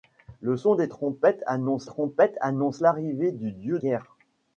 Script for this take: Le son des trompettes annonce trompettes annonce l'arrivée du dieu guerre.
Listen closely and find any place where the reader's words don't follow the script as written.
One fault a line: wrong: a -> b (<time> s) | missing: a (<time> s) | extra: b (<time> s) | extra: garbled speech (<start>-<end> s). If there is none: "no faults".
no faults